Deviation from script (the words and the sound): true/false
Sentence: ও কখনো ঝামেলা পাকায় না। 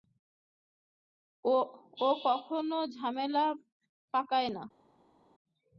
false